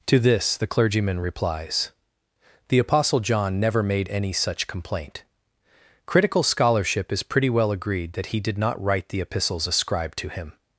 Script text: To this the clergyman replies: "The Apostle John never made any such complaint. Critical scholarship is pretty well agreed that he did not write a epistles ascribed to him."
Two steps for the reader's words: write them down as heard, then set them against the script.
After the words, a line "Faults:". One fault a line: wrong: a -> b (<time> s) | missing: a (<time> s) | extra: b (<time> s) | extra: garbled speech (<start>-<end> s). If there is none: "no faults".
To this the clergyman replies: "The Apostle John never made any such complaint. Critical scholarship is pretty well agreed that he did not write the epistles ascribed to him."
Faults:
wrong: a -> the (9.1 s)